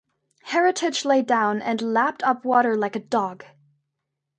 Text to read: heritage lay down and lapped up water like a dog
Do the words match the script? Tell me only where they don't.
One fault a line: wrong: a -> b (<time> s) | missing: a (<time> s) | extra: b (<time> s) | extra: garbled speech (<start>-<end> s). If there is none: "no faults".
no faults